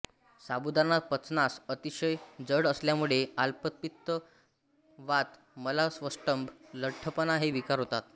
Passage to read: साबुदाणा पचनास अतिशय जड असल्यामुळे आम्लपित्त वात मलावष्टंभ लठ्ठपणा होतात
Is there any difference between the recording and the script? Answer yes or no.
yes